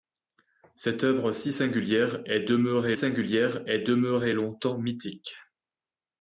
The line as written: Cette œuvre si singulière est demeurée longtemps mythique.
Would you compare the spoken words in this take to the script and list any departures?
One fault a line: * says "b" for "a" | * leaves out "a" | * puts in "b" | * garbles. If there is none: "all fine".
* puts in "singulière est demeurée"